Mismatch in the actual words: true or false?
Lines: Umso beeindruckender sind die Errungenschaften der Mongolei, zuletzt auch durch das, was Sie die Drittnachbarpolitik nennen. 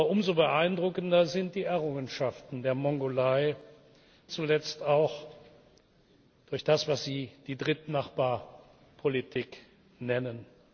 false